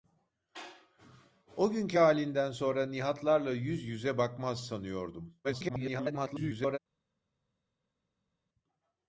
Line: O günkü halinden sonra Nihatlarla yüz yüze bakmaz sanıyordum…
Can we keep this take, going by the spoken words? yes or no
no